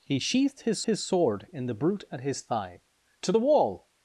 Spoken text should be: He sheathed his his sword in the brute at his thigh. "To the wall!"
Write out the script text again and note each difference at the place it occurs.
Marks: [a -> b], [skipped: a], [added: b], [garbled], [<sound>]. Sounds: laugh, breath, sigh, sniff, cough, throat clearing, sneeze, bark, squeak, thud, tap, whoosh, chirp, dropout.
He sheathed his his sword in the brute at his thigh. "To the wall!"